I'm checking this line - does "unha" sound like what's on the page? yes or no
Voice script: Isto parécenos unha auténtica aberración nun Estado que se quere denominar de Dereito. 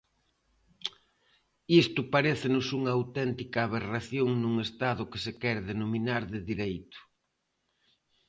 yes